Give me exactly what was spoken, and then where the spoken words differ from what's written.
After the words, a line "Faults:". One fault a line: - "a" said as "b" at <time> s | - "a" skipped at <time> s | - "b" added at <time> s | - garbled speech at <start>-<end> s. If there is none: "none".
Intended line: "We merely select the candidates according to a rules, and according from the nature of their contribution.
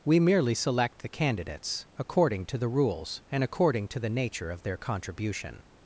"We merely select the candidates according to the rules, and according to the nature of their contribution.
Faults:
- "a" said as "the" at 2.6 s
- "from" said as "to" at 3.9 s